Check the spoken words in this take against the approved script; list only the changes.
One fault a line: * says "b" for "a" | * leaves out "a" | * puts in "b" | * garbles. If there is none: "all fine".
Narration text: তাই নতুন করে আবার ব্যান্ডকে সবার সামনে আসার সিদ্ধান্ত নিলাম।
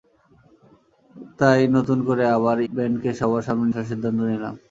all fine